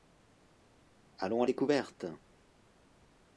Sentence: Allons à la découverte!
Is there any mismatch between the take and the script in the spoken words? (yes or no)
yes